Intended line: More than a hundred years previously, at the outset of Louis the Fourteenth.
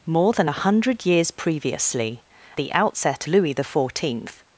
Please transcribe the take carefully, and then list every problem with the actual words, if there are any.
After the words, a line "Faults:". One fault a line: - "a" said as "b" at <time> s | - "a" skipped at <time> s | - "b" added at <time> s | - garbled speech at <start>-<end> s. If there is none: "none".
More than a hundred years previously, the outset Louis the Fourteenth.
Faults:
- "at" skipped at 2.2 s
- "of" skipped at 3.3 s